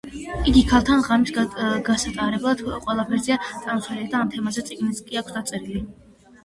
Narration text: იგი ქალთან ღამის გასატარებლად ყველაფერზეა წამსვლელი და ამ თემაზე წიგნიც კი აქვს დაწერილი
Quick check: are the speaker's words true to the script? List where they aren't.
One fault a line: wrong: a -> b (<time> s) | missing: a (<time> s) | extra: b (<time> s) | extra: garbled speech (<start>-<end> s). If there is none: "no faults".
no faults